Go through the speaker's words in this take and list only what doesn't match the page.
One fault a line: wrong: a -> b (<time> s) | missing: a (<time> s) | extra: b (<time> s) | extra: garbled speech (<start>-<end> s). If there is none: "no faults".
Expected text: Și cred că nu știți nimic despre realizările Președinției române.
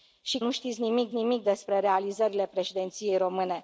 missing: cred că (0.4 s)
extra: nimic (1.1 s)